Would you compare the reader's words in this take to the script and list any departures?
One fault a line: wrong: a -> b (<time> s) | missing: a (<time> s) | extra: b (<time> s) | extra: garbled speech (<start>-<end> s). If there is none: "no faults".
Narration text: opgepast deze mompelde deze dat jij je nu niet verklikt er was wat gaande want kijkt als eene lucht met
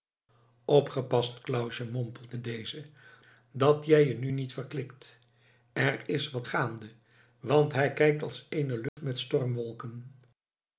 wrong: deze -> clausje (1.4 s)
wrong: was -> is (6.1 s)
extra: hij (7.7 s)